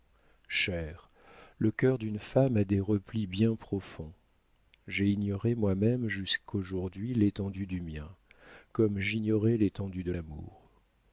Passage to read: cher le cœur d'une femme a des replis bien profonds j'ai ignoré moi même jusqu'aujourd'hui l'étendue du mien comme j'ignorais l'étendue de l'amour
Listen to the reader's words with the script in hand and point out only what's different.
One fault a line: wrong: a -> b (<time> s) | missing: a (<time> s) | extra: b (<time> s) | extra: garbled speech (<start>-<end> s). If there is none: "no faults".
no faults